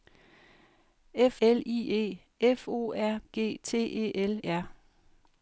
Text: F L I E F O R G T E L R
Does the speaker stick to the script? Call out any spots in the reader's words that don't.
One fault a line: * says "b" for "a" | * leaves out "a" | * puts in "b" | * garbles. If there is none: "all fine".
all fine